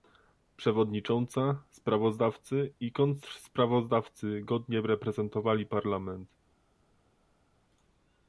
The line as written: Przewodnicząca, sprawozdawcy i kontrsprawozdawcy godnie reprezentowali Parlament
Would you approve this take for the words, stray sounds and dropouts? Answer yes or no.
yes